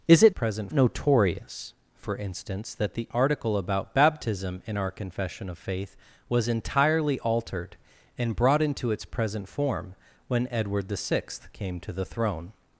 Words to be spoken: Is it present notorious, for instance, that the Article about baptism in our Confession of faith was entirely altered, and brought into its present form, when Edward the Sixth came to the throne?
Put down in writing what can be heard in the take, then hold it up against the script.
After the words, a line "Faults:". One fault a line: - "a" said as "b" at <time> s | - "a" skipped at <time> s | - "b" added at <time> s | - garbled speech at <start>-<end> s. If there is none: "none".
Is it present notorious, for instance, that the Article about baptism in our Confession of faith was entirely altered, and brought into its present form, when Edward the Sixth came to the throne?
Faults:
none